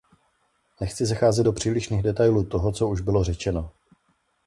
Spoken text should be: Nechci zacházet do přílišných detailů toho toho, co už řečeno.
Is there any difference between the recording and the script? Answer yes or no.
yes